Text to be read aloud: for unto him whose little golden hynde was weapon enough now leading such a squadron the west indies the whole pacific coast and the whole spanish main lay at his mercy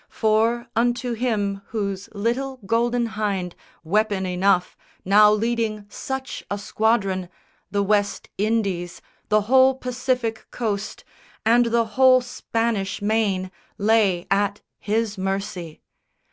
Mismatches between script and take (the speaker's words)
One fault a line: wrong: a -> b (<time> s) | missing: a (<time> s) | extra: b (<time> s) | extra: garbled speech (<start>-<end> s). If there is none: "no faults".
missing: was (3.5 s)